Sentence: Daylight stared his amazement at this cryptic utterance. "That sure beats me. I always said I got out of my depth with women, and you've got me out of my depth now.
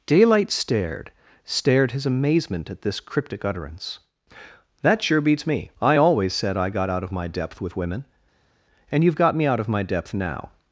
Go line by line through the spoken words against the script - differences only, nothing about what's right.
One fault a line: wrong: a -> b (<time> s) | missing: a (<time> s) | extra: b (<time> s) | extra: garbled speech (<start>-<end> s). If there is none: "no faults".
extra: stared (1.4 s)